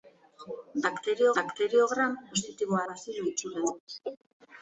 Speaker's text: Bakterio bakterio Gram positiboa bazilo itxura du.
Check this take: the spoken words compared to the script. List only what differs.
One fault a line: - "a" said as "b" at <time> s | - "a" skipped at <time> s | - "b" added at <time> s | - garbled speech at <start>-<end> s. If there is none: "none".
none